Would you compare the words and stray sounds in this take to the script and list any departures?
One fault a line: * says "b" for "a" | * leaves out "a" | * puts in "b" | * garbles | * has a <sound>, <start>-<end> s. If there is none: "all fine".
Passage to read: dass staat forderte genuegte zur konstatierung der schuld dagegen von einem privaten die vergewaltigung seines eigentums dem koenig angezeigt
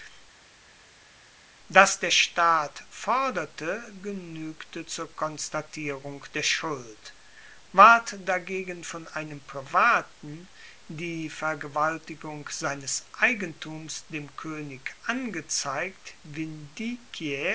* puts in "der"
* puts in "ward"